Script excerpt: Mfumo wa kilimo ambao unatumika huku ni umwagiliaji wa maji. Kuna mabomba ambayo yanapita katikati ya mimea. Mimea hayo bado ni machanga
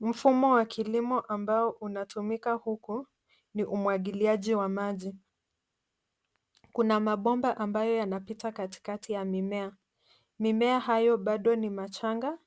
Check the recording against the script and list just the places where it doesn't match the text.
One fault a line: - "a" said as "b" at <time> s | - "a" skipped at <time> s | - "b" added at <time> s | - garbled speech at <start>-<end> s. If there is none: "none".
none